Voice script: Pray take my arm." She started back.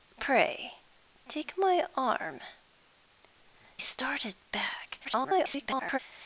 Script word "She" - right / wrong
wrong